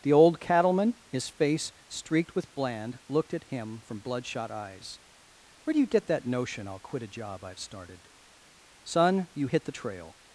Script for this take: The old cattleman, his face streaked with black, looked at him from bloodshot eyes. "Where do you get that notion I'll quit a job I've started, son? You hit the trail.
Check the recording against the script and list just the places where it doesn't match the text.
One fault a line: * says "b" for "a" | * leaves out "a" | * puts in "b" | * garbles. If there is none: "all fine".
* says "bland" for "black"